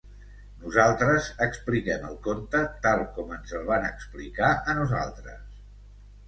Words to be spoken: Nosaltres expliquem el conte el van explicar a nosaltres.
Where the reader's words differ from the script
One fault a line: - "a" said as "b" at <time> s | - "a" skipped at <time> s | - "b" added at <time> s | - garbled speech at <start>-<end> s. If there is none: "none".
- "tal com ens" added at 2.8 s